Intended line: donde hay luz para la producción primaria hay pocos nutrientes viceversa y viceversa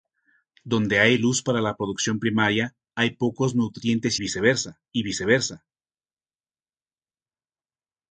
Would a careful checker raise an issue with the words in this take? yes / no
no